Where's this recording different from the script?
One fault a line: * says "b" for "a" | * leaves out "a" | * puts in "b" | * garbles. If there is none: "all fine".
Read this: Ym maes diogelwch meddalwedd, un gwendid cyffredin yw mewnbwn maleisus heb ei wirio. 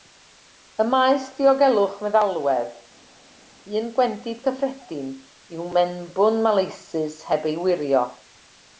all fine